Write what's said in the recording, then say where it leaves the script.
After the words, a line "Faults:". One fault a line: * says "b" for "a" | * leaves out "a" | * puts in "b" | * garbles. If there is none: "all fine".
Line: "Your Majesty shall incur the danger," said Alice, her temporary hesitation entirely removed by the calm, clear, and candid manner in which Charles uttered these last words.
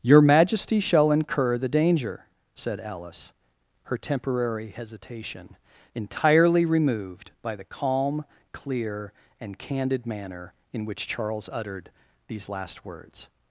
"Your Majesty shall incur the danger," said Alice, her temporary hesitation entirely removed by the calm, clear, and candid manner in which Charles uttered these last words.
Faults:
all fine